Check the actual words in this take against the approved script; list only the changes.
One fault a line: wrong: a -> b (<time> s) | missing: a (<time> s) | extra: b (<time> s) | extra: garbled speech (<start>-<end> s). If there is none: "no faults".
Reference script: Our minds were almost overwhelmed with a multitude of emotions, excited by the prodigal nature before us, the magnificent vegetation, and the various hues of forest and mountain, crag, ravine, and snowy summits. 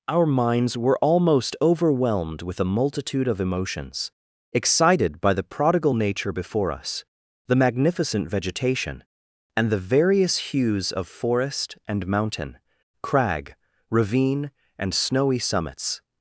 no faults